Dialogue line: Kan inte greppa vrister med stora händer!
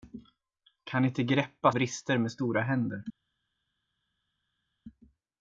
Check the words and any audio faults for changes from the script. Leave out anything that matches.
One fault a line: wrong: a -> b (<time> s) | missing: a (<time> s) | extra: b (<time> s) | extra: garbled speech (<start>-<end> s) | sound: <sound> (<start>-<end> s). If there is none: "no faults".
no faults